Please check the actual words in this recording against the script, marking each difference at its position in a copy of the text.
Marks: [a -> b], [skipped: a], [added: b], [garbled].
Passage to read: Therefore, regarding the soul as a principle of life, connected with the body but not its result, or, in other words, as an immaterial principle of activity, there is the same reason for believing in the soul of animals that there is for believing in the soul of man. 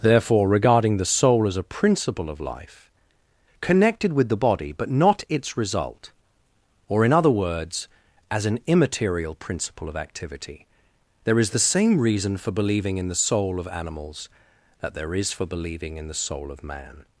Therefore, regarding the soul as a principle of life, connected with the body but not its result, or, in other words, as an immaterial principle of activity, there is the same reason for believing in the soul of animals that there is for believing in the soul of man.